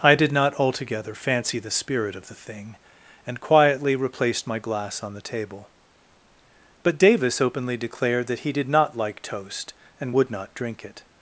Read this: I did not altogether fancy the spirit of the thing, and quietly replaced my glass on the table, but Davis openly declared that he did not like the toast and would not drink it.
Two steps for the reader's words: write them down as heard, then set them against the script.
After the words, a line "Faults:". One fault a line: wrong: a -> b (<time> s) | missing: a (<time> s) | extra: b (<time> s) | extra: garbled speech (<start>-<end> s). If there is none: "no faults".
I did not altogether fancy the spirit of the thing, and quietly replaced my glass on the table, but Davis openly declared that he did not like toast and would not drink it.
Faults:
missing: the (9.2 s)